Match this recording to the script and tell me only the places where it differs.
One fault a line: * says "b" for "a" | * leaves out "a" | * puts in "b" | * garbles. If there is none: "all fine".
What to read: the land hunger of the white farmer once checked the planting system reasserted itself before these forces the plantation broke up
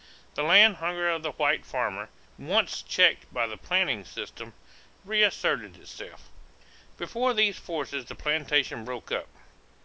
* puts in "by"